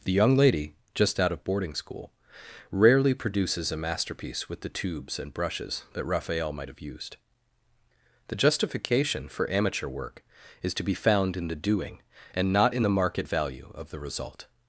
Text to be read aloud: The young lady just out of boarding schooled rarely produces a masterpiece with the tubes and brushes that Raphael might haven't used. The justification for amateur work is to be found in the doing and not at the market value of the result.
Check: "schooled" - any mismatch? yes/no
yes